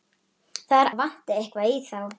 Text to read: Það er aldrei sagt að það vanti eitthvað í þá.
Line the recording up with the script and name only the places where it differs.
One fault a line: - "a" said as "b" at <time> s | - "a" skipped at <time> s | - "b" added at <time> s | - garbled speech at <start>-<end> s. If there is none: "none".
- "aldrei sagt að" skipped at 0.9 s